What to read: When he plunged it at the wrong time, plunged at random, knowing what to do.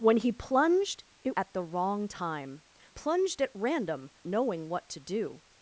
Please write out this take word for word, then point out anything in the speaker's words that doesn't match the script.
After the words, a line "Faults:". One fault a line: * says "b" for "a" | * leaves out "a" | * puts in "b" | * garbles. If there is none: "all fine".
When he plunged it at the wrong time, plunged at random, knowing what to do.
Faults:
all fine